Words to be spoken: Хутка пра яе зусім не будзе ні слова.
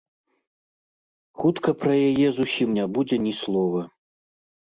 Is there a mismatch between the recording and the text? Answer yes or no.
no